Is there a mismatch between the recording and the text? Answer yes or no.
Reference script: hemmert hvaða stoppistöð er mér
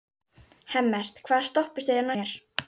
no